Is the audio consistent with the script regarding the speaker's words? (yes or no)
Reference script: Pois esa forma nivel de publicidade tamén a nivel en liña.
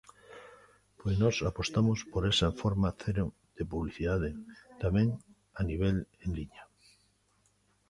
no